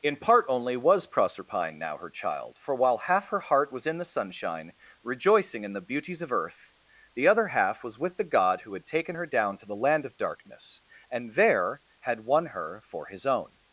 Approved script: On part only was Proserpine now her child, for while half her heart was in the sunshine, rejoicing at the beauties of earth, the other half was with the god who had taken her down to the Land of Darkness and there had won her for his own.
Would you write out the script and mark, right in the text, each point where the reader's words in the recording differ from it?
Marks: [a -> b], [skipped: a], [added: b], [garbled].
[On -> In] part only was Proserpine now her child, for while half her heart was in the sunshine, rejoicing [at -> in] the beauties of earth, the other half was with the god who had taken her down to the Land of Darkness and there had won her for his own.